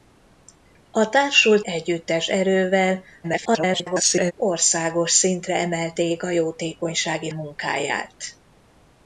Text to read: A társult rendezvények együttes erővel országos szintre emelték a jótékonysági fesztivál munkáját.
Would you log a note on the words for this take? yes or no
yes